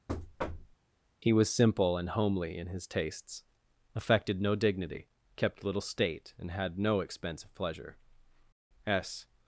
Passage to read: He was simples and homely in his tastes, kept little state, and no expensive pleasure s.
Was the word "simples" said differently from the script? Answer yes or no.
yes